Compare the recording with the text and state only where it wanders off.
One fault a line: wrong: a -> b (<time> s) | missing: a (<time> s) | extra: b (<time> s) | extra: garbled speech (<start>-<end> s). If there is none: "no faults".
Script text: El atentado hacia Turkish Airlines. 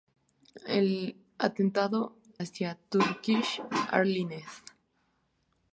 no faults